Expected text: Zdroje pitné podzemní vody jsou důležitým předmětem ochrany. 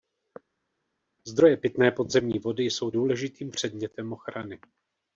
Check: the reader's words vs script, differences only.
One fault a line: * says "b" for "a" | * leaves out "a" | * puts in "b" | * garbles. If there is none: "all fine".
all fine